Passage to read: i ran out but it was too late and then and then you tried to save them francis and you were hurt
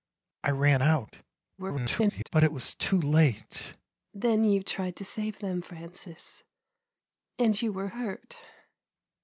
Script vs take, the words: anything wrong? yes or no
yes